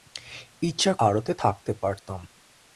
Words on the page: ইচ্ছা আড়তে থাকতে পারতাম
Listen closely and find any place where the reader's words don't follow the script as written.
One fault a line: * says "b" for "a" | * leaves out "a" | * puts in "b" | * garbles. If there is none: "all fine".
all fine